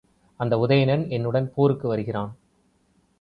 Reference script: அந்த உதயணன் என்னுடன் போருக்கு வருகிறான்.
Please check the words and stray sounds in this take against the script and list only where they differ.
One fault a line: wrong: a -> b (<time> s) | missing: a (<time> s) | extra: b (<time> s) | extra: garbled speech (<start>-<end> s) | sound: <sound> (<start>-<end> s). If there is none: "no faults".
no faults